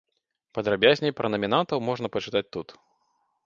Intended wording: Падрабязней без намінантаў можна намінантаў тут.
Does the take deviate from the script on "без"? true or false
true